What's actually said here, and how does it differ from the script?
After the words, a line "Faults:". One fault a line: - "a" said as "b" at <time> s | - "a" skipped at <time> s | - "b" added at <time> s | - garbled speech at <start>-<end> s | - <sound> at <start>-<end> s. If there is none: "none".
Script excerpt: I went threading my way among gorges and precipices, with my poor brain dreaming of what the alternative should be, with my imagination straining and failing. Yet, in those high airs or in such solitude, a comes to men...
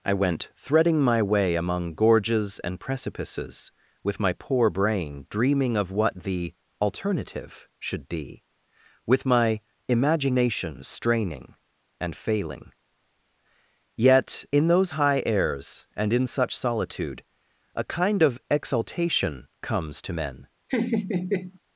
I went threading my way among gorges and precipices, with my poor brain dreaming of what the alternative should be, with my imagination straining and failing. Yet, in those high airs and in such solitude, a kind of exaltation comes to men...
Faults:
- "or" said as "and" at 16.0 s
- "kind of exaltation" added at 17.8 s
- laugh at 20.7-21.6 s